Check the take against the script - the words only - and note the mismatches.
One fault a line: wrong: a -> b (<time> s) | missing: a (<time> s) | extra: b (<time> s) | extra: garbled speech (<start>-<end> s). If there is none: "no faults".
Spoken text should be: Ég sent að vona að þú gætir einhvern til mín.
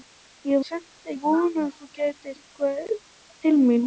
no faults